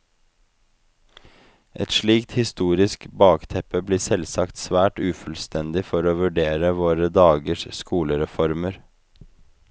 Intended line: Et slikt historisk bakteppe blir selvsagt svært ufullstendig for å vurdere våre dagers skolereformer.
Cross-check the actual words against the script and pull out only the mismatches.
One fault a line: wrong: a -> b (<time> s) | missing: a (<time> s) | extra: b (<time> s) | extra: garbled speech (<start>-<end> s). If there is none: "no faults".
no faults